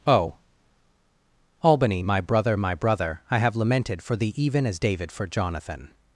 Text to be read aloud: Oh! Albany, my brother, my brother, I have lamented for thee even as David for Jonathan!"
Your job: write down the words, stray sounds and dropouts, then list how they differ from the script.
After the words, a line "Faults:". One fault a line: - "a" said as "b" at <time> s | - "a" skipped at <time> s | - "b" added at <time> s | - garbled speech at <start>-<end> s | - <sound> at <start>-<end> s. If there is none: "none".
Oh! Albany, my brother, my brother, I have lamented for thee even as David for Jonathan!"
Faults:
none